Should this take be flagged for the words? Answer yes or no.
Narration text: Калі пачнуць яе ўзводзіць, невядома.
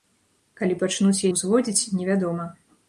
yes